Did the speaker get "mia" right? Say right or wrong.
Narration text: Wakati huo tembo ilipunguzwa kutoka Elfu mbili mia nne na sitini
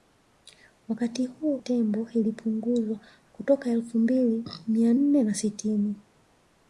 right